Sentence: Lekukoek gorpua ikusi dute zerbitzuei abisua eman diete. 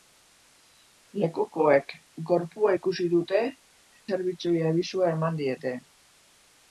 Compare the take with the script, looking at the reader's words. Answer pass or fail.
pass